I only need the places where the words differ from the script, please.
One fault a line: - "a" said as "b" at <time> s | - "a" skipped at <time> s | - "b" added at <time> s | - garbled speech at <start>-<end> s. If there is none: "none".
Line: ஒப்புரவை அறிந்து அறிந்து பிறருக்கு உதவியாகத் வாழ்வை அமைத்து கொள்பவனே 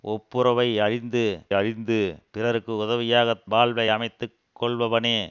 none